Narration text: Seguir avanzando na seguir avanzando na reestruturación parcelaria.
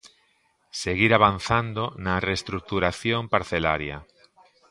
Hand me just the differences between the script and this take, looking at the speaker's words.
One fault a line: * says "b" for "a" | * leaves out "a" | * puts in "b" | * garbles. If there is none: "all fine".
* leaves out "seguir avanzando na"